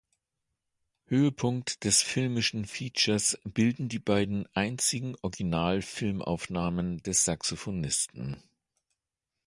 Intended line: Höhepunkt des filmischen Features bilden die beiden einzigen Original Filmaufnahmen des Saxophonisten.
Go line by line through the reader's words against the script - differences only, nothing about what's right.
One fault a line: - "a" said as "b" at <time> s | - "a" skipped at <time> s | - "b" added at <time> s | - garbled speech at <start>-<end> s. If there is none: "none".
none